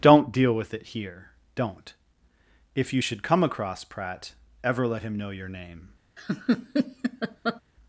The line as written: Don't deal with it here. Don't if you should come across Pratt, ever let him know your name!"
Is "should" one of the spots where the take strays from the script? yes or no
no